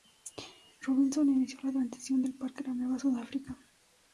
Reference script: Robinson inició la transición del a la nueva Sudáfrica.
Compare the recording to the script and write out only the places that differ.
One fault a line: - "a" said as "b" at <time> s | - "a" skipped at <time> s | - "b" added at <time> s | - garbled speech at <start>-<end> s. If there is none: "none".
- "parque" added at 2.4 s